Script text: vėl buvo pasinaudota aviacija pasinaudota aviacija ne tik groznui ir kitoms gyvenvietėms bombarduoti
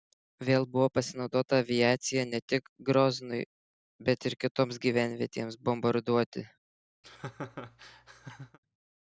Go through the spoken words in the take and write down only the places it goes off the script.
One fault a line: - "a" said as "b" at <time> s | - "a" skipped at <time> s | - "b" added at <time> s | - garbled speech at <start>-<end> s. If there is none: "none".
- "pasinaudota aviacija" skipped at 2.2 s
- "bet" added at 4.1 s